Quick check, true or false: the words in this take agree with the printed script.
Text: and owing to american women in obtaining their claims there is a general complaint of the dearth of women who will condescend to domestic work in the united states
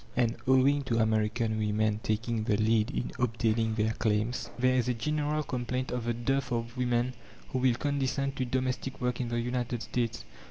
false